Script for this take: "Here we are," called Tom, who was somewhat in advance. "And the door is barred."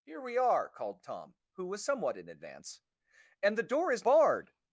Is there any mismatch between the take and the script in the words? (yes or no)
no